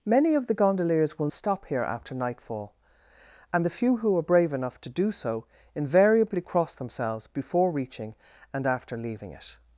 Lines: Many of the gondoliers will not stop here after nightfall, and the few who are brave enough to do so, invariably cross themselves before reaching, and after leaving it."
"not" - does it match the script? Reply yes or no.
no